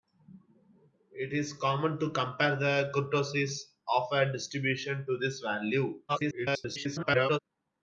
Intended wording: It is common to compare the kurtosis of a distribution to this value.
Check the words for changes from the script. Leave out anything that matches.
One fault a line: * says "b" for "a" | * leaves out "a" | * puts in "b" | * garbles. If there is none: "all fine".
* garbles